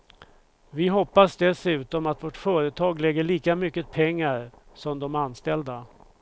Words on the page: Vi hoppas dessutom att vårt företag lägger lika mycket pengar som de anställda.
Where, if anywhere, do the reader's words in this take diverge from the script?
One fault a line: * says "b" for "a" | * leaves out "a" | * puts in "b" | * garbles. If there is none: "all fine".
all fine